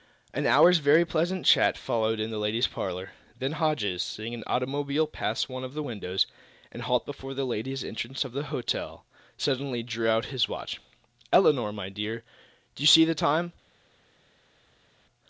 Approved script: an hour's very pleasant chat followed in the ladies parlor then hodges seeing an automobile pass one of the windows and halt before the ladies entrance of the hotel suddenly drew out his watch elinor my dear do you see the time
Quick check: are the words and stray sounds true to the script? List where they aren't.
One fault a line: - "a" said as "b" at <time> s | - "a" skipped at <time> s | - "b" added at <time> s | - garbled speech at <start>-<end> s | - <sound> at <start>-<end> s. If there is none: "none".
none